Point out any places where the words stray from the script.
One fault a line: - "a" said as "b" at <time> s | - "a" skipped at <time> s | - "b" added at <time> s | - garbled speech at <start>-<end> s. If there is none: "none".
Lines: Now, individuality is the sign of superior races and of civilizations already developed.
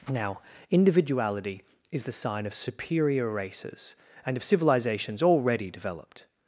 none